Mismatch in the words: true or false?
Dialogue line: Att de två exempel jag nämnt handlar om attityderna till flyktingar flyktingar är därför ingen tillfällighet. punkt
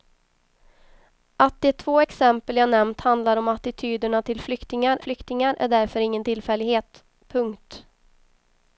false